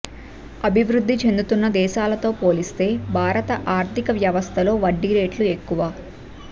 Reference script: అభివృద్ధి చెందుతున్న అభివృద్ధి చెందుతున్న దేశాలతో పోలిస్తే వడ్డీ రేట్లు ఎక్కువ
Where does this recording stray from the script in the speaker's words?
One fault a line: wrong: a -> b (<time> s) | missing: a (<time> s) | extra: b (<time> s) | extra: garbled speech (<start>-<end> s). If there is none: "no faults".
wrong: అభివృద్ధి చెందుతున్న దేశాలతో పోలిస్తే -> దేశాలతో పోలిస్తే భారత ఆర్థిక వ్యవస్థలో (1.7 s)